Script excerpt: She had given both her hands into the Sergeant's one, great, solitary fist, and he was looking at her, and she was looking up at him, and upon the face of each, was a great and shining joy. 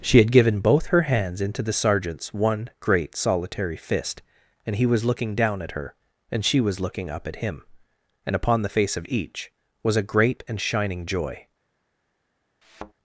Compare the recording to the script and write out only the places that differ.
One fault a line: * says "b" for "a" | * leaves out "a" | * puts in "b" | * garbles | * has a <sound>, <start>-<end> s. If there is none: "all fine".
* puts in "down"
* has a thud, 12.6-12.9 s